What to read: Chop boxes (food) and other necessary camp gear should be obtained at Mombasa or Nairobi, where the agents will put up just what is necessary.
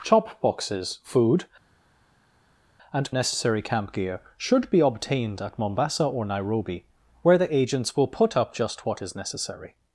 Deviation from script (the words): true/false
true